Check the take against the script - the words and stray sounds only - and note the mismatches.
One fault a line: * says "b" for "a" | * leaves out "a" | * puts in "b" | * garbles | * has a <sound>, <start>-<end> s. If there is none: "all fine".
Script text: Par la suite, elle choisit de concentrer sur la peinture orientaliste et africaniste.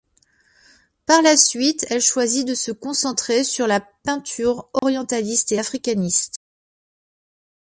* puts in "se"
* has a dropout, 4.8-4.8 s